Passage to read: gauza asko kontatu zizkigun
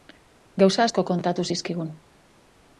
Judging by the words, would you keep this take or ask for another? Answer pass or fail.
pass